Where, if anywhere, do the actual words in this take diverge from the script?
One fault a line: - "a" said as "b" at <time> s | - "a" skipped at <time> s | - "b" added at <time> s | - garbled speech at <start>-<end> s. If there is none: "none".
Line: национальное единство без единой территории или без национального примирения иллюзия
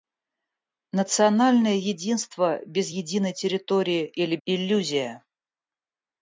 - "без национального примирения" skipped at 4.4 s